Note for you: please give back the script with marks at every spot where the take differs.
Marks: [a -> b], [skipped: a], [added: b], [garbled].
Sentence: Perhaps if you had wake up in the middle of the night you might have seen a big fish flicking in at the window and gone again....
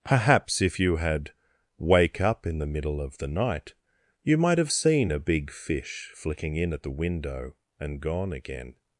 Perhaps if you had wake up in the middle of the night you might have seen a big fish flicking in at the window and gone again....